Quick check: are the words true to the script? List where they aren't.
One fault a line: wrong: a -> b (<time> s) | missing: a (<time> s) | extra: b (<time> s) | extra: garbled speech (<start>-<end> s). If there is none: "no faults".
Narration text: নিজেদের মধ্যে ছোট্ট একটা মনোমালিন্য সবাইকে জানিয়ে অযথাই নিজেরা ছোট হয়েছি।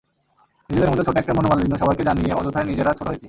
no faults